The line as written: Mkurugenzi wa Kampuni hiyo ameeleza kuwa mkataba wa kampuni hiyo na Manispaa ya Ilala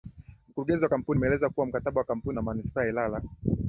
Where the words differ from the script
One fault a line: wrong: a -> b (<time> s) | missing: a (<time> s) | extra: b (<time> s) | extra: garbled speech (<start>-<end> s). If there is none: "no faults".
missing: hiyo (1.2 s)
missing: hiyo (2.4 s)